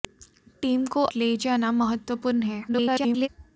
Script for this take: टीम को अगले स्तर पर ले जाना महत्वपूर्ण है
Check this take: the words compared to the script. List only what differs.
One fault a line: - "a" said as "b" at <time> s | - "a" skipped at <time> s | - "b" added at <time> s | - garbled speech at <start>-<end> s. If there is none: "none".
- "अगले स्तर पर" skipped at 1.0 s
- garbled speech at 2.7-3.3 s